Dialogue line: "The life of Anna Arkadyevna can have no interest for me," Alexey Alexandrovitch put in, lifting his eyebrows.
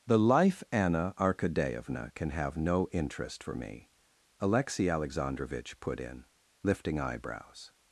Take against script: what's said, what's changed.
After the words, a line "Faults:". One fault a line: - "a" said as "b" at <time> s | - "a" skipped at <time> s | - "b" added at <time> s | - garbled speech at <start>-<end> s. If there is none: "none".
"The life Anna Arkadyevna can have no interest for me," Alexey Alexandrovitch put in, lifting eyebrows.
Faults:
- "of" skipped at 0.6 s
- "his" skipped at 7.0 s